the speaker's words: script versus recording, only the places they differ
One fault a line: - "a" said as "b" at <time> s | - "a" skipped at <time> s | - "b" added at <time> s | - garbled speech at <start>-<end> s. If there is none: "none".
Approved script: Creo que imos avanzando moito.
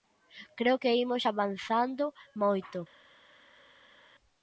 none